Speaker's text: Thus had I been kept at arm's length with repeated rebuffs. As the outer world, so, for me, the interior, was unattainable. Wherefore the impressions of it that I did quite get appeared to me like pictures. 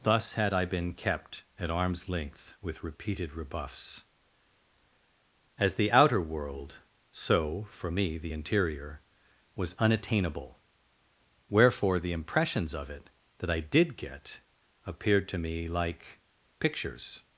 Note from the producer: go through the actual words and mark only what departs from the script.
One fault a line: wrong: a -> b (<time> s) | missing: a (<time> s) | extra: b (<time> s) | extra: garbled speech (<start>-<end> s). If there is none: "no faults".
missing: quite (14.0 s)